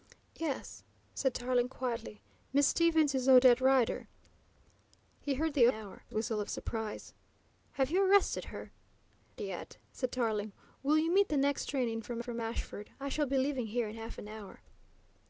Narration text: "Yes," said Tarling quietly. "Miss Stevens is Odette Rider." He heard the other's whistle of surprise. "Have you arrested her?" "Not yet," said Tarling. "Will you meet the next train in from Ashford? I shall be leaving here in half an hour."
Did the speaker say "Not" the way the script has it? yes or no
no